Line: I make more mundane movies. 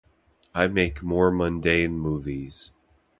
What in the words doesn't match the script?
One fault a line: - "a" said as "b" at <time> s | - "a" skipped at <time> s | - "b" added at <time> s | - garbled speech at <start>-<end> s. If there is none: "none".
none